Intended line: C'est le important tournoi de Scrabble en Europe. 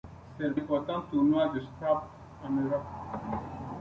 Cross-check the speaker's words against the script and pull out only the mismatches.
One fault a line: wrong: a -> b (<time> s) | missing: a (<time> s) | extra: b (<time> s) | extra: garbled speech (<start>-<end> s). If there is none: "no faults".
no faults